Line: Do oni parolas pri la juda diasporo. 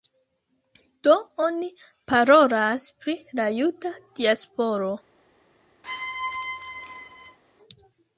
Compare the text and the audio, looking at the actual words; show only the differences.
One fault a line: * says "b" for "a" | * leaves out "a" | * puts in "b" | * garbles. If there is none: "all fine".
all fine